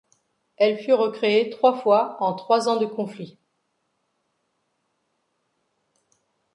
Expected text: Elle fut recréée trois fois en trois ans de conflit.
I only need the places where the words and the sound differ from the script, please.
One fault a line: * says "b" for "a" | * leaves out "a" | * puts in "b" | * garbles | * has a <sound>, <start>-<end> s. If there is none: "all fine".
all fine